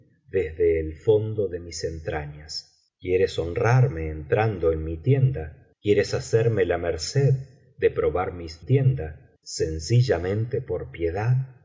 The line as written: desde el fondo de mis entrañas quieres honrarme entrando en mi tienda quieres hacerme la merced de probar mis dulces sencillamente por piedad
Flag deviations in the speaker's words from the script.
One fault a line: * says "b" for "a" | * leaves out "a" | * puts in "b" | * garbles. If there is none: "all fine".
* says "tienda" for "dulces"